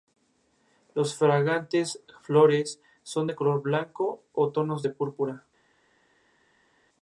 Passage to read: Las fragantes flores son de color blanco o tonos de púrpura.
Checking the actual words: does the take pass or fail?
pass